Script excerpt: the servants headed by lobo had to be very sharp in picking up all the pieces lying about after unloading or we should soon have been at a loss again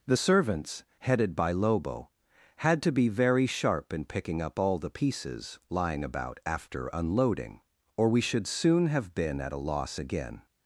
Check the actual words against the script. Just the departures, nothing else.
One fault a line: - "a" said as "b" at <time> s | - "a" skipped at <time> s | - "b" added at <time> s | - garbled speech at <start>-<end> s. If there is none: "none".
none